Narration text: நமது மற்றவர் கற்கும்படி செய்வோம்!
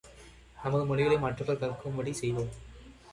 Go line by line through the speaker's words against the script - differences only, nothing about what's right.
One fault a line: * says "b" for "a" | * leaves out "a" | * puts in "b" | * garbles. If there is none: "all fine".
* puts in "மொழிகளை"